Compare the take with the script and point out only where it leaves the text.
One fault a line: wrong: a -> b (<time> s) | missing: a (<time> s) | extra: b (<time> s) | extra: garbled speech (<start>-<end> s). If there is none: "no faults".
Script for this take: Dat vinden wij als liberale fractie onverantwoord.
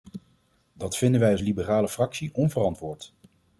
no faults